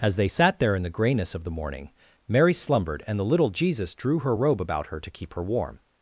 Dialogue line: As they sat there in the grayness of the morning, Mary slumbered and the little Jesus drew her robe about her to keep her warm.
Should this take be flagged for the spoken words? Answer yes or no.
no